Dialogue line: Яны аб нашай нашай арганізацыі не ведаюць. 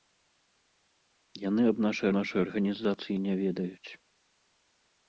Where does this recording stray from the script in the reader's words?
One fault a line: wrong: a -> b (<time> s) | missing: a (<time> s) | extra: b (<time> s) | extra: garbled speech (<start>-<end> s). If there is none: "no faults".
no faults